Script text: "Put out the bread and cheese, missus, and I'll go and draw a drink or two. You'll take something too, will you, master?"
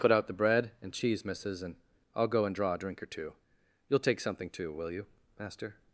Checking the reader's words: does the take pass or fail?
pass